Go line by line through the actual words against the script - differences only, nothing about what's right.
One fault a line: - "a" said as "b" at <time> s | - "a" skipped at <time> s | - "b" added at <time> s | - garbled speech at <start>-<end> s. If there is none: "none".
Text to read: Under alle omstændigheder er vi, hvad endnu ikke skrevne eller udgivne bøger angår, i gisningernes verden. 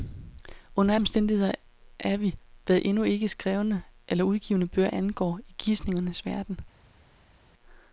- "alle" skipped at 0.9 s